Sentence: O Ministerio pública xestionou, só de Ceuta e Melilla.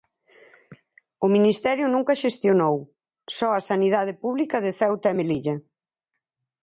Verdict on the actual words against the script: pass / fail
fail